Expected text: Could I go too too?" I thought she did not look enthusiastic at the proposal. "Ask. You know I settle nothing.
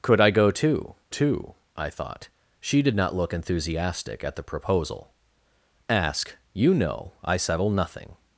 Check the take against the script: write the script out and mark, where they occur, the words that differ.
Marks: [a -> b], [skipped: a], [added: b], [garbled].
Could I go too too?" I thought she did not look enthusiastic at the proposal. "Ask. You know I settle nothing.